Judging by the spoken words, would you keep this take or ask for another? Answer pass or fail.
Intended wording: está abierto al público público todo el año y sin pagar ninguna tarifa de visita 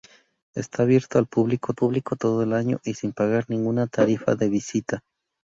pass